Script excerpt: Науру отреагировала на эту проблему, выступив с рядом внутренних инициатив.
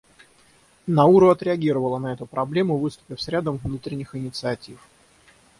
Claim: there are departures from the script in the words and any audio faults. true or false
false